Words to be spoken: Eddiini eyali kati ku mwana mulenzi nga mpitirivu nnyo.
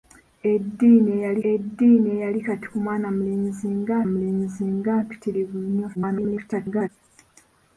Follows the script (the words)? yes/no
no